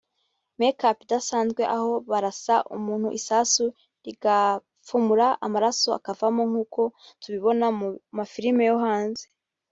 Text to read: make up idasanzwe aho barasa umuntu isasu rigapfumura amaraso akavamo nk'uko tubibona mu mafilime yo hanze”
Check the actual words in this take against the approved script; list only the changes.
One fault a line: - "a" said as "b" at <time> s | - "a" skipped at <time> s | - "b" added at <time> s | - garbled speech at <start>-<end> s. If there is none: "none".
none